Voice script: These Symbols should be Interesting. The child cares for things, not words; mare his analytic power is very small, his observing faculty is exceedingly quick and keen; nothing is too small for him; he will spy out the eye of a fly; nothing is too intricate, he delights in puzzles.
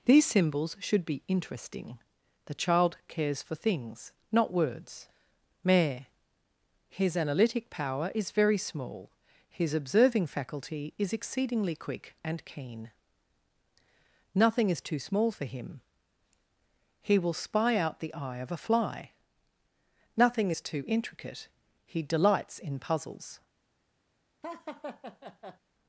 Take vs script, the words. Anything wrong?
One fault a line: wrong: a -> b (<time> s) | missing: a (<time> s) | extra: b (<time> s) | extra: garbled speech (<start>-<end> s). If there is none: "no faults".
no faults